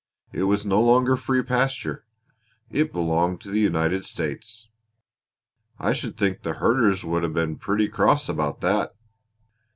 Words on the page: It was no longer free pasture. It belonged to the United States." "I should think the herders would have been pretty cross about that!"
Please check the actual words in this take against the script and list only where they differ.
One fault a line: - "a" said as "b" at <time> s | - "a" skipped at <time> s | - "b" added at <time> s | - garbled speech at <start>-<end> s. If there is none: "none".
none